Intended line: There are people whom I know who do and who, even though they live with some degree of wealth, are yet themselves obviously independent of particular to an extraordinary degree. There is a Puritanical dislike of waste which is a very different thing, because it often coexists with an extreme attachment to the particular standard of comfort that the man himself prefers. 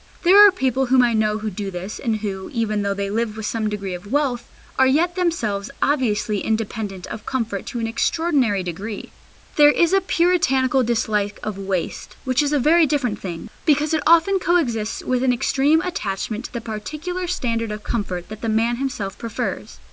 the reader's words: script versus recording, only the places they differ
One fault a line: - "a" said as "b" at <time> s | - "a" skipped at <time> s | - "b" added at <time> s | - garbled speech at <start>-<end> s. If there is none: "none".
- "this" added at 1.7 s
- "particular" said as "comfort" at 7.3 s